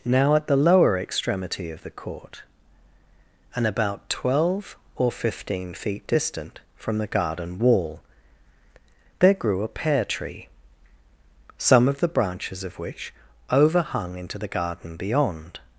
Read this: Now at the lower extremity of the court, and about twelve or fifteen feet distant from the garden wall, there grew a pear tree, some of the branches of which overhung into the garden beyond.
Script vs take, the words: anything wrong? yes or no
no